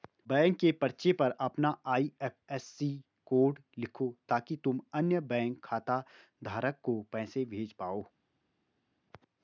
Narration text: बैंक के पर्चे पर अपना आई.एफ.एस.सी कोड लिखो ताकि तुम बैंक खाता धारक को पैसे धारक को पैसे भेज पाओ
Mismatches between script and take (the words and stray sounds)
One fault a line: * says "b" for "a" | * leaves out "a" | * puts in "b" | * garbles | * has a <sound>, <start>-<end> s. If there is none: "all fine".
* puts in "अन्य"
* leaves out "धारक को पैसे"